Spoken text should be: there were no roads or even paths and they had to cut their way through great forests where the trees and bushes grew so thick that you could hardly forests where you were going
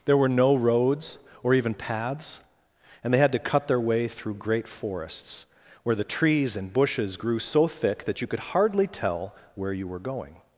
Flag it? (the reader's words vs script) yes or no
yes